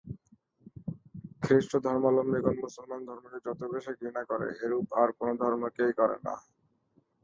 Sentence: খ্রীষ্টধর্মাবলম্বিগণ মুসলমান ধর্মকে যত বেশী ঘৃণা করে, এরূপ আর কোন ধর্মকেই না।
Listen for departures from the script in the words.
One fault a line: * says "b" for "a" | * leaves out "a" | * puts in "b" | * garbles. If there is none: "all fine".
* puts in "করে"